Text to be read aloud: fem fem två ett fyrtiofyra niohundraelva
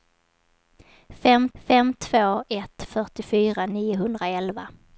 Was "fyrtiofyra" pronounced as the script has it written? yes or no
yes